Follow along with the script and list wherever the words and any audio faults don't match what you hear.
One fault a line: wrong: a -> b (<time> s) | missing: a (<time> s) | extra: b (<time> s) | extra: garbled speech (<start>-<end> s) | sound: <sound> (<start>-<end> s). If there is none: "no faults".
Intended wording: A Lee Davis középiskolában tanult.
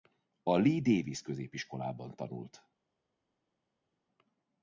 no faults